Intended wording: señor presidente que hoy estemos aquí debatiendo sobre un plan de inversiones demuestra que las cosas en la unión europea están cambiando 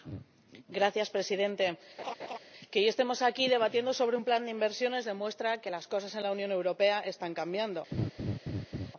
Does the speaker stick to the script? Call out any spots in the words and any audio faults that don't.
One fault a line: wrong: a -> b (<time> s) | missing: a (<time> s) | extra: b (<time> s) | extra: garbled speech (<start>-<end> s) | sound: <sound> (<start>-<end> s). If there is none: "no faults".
sound: laugh (2.0-2.4 s)
sound: laugh (7.9-8.9 s)